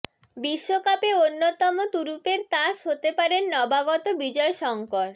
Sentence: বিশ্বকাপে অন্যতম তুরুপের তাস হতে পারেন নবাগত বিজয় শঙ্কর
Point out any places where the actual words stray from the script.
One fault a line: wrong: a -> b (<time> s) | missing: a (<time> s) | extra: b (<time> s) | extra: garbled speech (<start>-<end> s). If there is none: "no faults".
no faults